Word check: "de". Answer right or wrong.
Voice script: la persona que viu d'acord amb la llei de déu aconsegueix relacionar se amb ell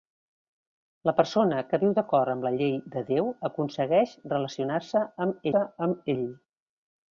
right